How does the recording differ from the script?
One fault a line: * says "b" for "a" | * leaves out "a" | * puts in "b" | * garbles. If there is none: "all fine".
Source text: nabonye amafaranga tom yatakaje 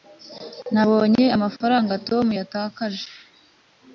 all fine